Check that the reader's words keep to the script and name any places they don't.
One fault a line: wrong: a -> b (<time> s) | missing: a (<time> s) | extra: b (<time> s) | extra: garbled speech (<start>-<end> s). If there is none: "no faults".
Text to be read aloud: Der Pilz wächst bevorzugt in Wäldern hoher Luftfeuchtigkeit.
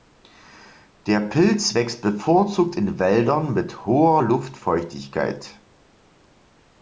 extra: mit (3.5 s)